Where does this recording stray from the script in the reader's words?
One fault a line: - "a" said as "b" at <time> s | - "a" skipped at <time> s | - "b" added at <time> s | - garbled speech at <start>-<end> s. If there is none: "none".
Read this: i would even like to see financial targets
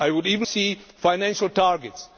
- "like to" skipped at 0.5 s